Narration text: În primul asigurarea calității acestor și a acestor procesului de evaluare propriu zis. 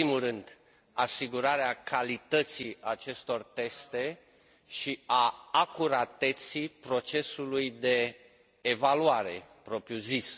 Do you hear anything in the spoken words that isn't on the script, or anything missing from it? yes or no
yes